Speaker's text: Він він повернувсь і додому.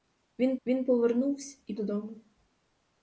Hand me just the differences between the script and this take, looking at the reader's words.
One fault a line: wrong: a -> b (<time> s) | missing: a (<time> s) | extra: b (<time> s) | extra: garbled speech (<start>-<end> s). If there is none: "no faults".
no faults